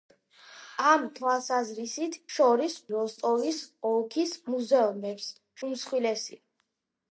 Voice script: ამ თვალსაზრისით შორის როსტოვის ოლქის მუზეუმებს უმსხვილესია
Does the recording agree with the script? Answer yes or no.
yes